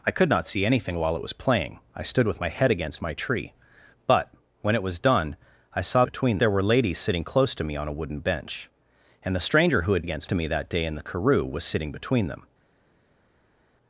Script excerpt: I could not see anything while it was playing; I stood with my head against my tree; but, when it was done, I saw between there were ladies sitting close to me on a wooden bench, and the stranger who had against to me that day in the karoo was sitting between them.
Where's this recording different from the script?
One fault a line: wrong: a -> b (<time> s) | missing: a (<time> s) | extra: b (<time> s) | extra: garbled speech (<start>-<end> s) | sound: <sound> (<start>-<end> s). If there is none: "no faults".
no faults